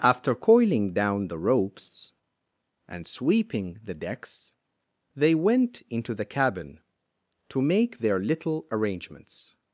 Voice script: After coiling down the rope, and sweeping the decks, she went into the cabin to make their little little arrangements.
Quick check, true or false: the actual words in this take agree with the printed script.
false